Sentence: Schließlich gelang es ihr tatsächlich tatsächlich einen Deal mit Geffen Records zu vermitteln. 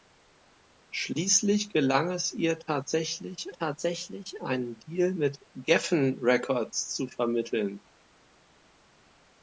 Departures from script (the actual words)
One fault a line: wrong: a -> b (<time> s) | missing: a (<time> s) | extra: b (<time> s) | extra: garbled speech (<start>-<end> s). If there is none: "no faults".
no faults